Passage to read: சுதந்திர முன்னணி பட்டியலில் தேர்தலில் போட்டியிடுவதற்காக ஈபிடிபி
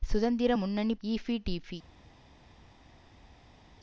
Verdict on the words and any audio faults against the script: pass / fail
fail